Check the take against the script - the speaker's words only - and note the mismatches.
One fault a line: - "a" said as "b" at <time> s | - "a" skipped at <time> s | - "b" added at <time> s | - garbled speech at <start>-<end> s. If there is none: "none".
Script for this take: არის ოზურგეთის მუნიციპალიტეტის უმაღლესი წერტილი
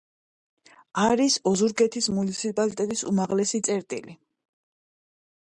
none